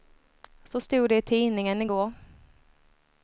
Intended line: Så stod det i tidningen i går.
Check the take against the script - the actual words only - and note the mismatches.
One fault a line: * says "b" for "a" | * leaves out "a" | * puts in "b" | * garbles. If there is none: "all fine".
all fine